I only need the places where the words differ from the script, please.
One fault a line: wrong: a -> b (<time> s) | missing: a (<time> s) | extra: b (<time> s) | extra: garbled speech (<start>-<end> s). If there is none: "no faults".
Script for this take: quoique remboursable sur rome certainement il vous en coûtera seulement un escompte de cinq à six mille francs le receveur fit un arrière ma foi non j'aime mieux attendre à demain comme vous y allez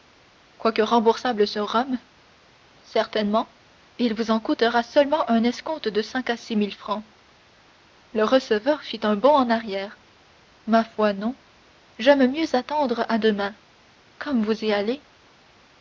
extra: bond en (9.2 s)